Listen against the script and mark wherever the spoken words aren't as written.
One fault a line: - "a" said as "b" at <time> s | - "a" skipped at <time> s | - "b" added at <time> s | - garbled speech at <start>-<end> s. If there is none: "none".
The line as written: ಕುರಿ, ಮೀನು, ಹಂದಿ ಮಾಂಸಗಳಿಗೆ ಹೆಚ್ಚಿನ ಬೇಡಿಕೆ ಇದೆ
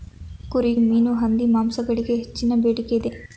none